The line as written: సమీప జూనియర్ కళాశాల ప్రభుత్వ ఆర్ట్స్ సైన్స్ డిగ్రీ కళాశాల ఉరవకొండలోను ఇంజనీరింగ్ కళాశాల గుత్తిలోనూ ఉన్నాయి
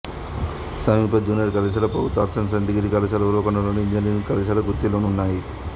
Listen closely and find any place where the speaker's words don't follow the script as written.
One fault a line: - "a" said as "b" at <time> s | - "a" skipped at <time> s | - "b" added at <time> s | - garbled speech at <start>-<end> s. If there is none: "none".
none